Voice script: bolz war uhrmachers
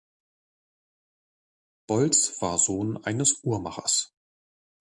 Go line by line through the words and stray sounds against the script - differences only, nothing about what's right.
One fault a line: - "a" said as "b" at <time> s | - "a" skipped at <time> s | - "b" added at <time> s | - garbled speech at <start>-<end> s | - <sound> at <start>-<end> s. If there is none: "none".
- "sohn eines" added at 2.6 s